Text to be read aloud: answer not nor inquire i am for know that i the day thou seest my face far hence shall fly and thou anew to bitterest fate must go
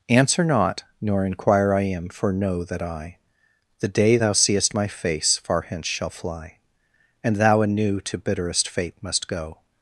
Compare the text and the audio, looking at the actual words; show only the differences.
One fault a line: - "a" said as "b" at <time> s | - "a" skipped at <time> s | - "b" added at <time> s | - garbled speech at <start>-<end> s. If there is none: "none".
none